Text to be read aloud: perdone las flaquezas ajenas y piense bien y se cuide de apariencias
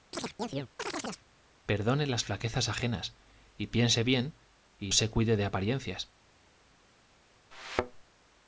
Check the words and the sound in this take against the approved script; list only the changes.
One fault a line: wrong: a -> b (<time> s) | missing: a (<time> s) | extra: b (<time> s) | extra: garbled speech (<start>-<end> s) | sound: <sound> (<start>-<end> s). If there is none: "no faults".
sound: chirp (0.1-1.3 s)
sound: thud (7.5-8.0 s)